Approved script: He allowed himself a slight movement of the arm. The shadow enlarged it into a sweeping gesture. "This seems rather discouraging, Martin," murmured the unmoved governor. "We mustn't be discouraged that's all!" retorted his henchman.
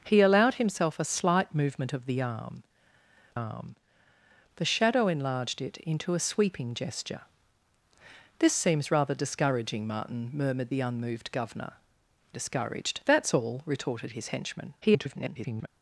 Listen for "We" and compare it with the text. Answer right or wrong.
wrong